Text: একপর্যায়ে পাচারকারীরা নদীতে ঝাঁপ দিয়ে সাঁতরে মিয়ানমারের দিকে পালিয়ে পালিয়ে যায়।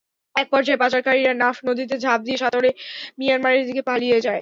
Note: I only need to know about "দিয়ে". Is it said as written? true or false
true